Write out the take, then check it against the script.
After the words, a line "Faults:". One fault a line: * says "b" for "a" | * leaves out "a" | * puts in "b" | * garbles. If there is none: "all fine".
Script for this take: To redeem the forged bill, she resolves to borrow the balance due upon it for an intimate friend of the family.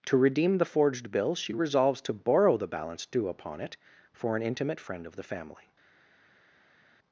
To redeem the forged bill, she resolves to borrow the balance due upon it for an intimate friend of the family.
Faults:
all fine